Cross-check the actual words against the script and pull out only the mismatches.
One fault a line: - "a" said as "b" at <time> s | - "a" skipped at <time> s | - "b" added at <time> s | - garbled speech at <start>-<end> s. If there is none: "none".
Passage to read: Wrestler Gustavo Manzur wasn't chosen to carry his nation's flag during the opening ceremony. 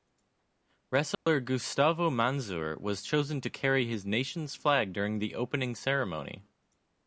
- "wasn't" said as "was" at 2.8 s